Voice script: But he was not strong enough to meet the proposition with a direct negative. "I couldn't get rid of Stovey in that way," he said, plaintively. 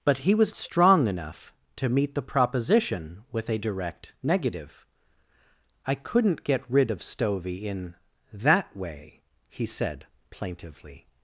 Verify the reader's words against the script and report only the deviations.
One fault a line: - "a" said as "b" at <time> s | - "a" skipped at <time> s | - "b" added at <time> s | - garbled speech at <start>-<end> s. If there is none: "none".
- "not" skipped at 0.6 s